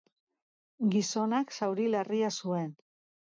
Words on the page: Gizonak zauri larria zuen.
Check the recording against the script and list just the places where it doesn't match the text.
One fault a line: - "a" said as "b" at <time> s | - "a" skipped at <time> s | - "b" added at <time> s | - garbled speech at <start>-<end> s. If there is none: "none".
none